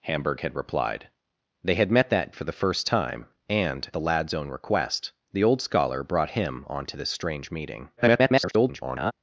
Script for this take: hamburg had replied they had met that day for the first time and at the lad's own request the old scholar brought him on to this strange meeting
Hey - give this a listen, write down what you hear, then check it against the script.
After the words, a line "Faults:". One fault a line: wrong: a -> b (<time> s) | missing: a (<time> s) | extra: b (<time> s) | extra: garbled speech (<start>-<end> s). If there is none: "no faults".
hamburg had replied they had met that for the first time and the lad's own request the old scholar brought him on to this strange meeting [garbled]
Faults:
missing: day (2.3 s)
missing: at (3.9 s)
extra: garbled speech (8.0-9.1 s)